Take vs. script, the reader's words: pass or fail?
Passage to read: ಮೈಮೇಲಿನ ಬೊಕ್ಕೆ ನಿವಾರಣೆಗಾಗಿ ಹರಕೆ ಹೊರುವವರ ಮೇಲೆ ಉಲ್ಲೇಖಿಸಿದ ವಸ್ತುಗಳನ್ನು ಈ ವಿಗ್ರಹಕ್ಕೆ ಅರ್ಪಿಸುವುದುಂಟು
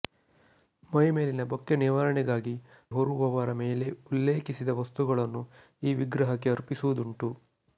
fail